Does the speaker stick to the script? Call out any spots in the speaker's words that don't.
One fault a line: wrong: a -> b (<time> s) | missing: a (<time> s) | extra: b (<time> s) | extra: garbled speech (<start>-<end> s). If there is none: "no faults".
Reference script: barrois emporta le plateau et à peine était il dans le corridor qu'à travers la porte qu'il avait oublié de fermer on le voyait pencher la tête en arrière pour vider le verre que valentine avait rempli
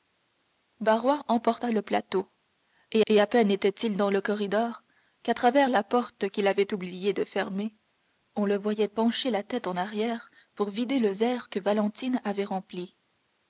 extra: et (3.1 s)